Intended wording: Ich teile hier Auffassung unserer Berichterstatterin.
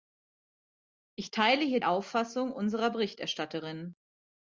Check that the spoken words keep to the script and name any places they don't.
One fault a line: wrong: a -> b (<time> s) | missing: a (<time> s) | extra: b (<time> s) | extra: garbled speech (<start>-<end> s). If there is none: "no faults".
no faults